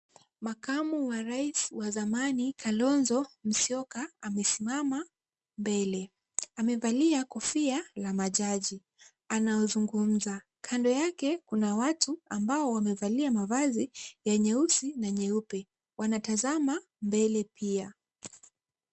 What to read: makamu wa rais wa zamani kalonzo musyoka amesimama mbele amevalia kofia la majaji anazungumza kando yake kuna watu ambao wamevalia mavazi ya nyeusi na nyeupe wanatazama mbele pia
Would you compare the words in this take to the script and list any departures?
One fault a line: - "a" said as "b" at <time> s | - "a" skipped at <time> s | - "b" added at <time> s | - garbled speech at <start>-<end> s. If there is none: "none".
none